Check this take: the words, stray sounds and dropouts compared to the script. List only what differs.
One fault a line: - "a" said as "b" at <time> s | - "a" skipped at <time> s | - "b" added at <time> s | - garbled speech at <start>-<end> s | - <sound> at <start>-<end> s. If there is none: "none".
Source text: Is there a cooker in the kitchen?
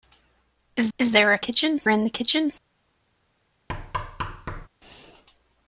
- "is" added at 1.0 s
- "cooker" said as "kitchen" at 1.4 s
- thud at 3.7-4.7 s